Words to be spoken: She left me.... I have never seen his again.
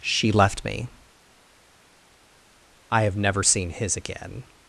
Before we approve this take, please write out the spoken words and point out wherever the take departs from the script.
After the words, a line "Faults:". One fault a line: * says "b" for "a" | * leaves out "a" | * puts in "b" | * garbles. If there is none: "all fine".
She left me.... I have never seen his again.
Faults:
all fine